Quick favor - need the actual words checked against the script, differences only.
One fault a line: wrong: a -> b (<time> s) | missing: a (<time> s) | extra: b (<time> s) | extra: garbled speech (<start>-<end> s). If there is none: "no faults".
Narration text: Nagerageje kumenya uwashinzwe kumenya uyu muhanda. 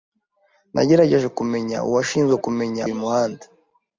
no faults